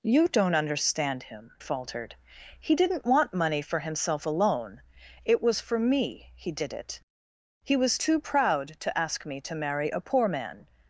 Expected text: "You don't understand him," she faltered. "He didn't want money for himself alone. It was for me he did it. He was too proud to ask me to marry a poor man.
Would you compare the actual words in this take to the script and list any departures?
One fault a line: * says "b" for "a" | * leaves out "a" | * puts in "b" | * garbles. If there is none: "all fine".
* leaves out "she"